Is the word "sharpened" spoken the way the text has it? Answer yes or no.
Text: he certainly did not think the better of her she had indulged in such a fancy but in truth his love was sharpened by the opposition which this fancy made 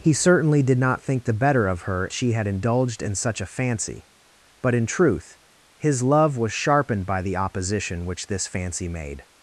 yes